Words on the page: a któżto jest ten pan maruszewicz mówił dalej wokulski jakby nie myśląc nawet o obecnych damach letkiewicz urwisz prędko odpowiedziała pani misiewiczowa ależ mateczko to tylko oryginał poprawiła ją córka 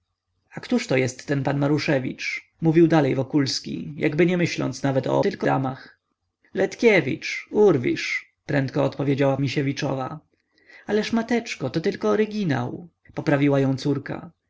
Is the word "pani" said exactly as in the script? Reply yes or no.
no